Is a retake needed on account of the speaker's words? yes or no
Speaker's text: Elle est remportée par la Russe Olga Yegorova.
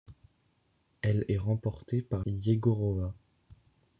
yes